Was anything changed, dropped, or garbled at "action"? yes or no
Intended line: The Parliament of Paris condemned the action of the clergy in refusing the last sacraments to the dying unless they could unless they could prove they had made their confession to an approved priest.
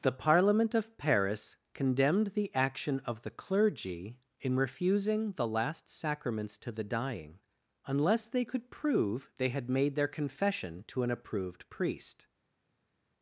no